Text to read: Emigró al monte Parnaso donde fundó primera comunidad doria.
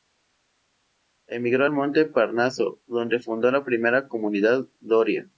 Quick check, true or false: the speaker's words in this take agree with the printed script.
false